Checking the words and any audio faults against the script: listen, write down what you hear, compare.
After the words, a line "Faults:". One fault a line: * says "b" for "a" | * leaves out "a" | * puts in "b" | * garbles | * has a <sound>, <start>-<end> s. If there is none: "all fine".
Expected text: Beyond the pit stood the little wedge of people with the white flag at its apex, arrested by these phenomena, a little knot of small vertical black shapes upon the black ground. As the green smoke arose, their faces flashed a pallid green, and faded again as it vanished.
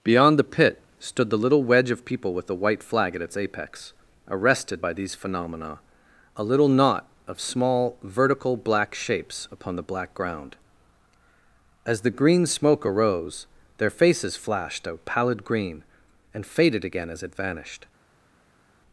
Beyond the pit stood the little wedge of people with the white flag at its apex, arrested by these phenomena, a little knot of small vertical black shapes upon the black ground. As the green smoke arose, their faces flashed a pallid green, and faded again as it vanished.
Faults:
all fine